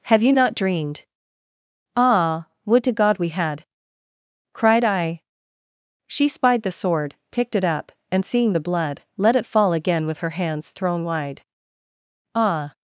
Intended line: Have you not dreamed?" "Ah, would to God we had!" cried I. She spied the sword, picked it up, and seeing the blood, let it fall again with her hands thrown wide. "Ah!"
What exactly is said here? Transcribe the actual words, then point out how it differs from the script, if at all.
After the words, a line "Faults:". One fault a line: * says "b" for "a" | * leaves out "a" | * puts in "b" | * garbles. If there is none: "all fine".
Have you not dreamed?" "Ah, would to God we had!" cried I. She spied the sword, picked it up, and seeing the blood, let it fall again with her hands thrown wide. "Ah!"
Faults:
all fine